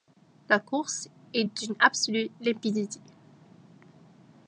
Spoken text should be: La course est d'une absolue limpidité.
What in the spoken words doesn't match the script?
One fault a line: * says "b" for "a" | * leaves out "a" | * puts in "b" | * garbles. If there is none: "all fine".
all fine